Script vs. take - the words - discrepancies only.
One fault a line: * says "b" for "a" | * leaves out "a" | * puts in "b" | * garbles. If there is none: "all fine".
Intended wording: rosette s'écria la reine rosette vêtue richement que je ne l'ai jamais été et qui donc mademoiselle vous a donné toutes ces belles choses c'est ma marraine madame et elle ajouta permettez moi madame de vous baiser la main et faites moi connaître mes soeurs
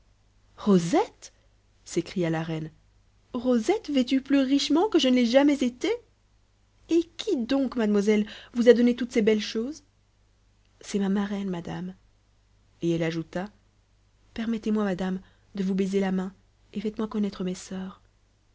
* puts in "plus"